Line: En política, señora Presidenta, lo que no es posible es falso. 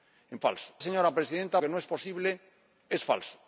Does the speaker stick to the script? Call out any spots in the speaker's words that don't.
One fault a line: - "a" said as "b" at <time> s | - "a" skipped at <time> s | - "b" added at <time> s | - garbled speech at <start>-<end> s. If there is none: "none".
- "política" said as "falso" at 0.4 s
- "lo" skipped at 1.6 s